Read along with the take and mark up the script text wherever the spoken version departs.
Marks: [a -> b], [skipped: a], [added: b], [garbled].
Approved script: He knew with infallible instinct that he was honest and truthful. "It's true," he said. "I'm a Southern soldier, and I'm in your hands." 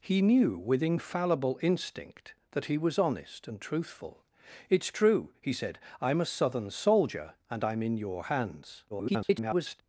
He knew with infallible instinct that he was honest and truthful. "It's true," he said. "I'm a Southern soldier, and I'm in your hands." [garbled]